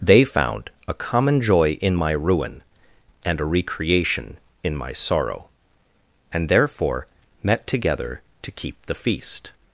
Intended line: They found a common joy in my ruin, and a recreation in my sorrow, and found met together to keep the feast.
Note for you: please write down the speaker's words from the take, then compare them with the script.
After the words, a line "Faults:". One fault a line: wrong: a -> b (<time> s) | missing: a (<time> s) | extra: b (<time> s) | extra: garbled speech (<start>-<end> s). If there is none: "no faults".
They found a common joy in my ruin, and a recreation in my sorrow, and therefore met together to keep the feast.
Faults:
wrong: found -> therefore (6.5 s)